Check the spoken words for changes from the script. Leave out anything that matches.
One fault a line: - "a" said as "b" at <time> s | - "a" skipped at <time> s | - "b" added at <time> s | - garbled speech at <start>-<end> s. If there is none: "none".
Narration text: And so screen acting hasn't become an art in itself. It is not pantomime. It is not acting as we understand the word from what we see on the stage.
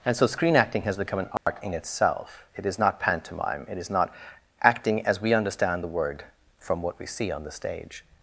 - "hasn't" said as "has" at 0.8 s